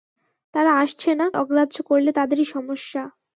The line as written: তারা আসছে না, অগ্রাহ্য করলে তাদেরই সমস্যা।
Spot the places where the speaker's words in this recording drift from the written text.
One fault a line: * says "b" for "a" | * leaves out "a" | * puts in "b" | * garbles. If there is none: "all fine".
all fine